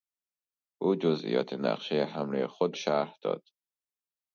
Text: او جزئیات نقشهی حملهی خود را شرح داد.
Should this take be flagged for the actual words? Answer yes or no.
yes